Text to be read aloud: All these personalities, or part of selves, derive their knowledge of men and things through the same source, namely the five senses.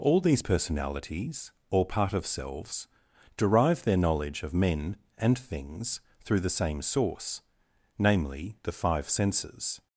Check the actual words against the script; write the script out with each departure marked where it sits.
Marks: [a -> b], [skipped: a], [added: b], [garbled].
All these personalities, or part of selves, derive their knowledge of men and things through the same source, namely the five senses.